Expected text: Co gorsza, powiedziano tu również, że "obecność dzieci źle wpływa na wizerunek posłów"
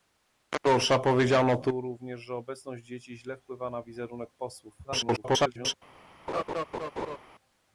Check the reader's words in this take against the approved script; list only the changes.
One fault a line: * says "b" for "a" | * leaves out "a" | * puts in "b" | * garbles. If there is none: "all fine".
* garbles